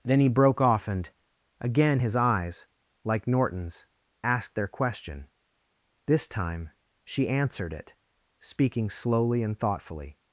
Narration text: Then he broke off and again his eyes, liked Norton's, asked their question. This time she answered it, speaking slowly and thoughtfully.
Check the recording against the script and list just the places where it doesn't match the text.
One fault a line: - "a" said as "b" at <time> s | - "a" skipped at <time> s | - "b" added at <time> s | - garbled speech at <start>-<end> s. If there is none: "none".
- "liked" said as "like" at 3.0 s